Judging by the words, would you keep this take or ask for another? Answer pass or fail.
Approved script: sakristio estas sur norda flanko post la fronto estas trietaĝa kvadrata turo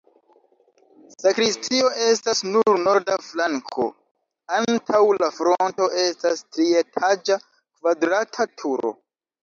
fail